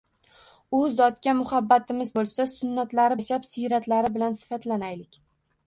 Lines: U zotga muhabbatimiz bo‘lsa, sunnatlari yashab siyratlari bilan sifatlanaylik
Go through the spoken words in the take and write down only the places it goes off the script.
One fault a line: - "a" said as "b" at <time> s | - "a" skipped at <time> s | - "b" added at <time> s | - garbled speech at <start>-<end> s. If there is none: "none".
none